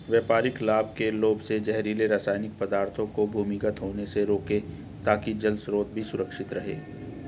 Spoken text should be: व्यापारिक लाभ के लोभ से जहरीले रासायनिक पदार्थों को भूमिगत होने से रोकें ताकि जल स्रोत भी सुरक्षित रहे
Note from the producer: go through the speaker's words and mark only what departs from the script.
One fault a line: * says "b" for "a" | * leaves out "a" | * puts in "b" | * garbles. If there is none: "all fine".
all fine